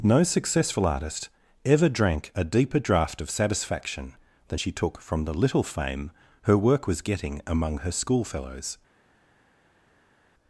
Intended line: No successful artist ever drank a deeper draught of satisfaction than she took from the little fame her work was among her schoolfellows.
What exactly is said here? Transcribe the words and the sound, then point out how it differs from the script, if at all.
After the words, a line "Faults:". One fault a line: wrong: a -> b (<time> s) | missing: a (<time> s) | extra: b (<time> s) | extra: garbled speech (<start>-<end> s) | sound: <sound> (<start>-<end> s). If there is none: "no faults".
No successful artist ever drank a deeper draught of satisfaction than she took from the little fame her work was getting among her schoolfellows.
Faults:
extra: getting (7.0 s)